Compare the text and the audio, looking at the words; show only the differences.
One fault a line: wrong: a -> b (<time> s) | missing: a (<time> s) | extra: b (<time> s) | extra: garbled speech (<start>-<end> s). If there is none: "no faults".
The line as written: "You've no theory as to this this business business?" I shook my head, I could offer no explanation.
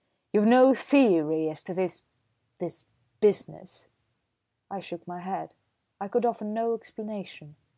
missing: business (3.9 s)